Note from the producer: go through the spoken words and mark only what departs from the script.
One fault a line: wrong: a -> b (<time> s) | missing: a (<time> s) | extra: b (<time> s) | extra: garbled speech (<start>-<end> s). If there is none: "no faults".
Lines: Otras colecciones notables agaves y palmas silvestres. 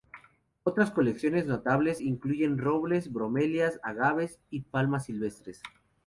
extra: incluyen robles bromelias (2.0 s)